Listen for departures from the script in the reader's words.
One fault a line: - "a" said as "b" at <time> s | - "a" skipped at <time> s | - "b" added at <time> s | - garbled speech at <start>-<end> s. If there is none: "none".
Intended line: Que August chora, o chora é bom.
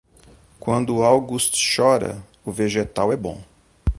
- "Que" said as "Quando" at 0.6 s
- "chora" said as "vegetal" at 2.5 s